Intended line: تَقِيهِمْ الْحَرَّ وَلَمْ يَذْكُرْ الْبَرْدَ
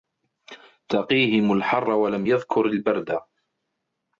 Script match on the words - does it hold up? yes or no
yes